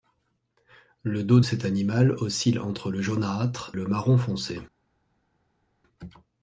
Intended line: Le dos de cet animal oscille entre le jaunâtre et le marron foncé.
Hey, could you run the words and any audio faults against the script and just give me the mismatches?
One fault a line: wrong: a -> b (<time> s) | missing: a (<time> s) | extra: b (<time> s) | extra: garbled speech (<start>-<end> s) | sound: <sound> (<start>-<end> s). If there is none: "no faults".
missing: de (1.4 s)
missing: et (3.7 s)